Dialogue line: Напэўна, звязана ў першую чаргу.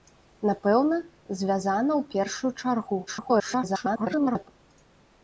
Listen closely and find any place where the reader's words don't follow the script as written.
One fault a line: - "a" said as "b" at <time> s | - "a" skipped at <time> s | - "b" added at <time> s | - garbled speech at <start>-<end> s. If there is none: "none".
- garbled speech at 3.1-4.5 s